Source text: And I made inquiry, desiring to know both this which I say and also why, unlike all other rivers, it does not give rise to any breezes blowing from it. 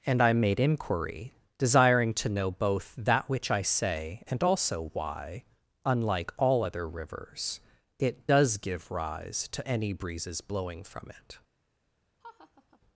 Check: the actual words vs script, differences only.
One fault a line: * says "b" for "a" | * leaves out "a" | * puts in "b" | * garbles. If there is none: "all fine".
* says "that" for "this"
* leaves out "not"